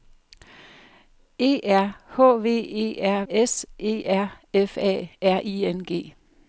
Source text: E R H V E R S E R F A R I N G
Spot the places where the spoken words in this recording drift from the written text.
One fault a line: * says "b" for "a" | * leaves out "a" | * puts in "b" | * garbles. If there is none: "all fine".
all fine